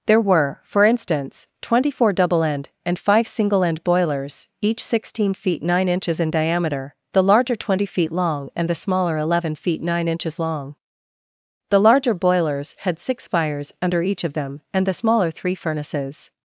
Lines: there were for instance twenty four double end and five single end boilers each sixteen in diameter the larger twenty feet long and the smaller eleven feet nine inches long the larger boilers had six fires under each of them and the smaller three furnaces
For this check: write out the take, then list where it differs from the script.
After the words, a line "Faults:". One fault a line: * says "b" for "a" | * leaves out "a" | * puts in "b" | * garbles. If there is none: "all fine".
there were for instance twenty four double end and five single end boilers each sixteen feet nine inches in diameter the larger twenty feet long and the smaller eleven feet nine inches long the larger boilers had six fires under each of them and the smaller three furnaces
Faults:
* puts in "feet nine inches"